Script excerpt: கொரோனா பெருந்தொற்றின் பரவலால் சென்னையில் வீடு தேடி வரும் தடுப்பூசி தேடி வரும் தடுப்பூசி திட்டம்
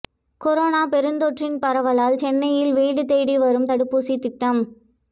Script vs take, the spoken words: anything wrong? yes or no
yes